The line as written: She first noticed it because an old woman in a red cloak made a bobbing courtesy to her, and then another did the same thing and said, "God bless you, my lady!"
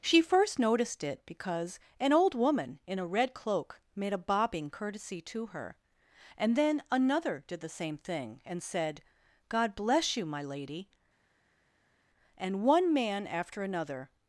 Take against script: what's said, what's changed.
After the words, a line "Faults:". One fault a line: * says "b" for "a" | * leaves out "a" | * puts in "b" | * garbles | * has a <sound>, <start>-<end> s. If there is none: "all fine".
She first noticed it because an old woman in a red cloak made a bobbing courtesy to her, and then another did the same thing and said, "God bless you, my lady!" and one man after another
Faults:
* puts in "and one man after another"